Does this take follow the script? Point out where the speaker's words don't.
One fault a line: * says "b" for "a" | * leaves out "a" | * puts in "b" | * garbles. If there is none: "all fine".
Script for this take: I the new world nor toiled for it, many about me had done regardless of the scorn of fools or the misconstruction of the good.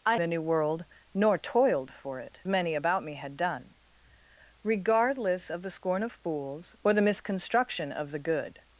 all fine